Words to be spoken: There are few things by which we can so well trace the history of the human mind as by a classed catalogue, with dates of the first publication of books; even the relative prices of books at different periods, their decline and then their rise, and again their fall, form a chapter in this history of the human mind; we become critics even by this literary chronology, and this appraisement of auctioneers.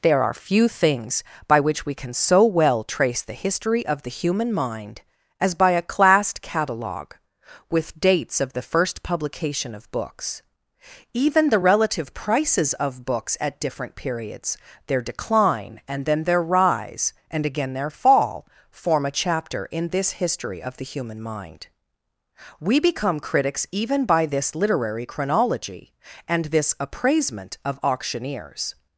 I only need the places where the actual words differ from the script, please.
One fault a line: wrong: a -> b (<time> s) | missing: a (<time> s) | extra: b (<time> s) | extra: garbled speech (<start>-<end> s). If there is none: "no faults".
no faults